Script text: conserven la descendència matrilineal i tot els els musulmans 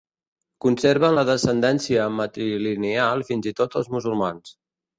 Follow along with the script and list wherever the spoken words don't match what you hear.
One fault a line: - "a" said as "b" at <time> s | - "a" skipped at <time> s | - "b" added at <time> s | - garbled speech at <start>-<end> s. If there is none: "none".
- "fins" added at 3.3 s
- "els" skipped at 3.9 s